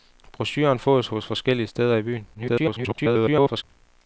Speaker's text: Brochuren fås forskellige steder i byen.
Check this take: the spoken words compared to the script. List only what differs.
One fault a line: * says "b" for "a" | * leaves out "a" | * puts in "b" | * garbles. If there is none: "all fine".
* garbles